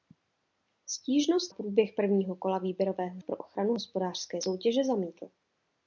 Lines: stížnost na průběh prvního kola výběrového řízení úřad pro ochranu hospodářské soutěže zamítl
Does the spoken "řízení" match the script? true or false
false